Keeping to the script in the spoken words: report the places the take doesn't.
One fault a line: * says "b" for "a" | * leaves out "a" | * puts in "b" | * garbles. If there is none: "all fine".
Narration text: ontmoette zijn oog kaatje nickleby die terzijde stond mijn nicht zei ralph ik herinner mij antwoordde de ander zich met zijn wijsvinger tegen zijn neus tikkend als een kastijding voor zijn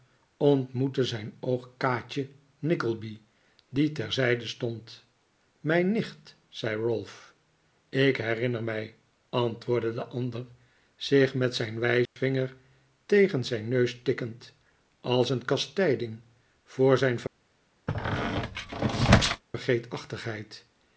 all fine